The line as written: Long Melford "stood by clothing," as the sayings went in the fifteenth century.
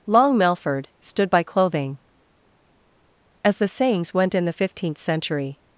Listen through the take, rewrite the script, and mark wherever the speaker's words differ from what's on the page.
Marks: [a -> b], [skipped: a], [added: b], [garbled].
Long Melford "stood by clothing," as the sayings went in the fifteenth century.